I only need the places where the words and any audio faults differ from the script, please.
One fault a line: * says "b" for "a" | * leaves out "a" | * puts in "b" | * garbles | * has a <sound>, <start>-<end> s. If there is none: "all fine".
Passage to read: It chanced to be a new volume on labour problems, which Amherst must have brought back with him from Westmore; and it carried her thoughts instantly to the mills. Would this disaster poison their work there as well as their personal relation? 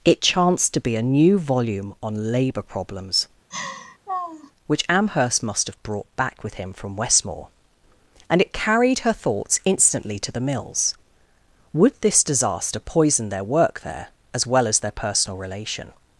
* has a laugh, 3.5-4.5 s